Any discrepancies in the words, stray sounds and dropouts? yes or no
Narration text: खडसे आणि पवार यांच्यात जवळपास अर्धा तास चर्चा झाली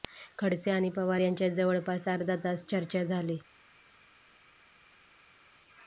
no